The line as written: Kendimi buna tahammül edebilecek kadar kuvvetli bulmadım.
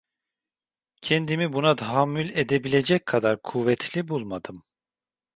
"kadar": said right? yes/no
yes